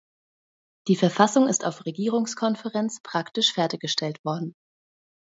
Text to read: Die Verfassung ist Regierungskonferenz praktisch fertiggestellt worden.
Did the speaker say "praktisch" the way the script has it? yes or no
yes